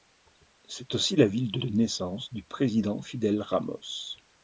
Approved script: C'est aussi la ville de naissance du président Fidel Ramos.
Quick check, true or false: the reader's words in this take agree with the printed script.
false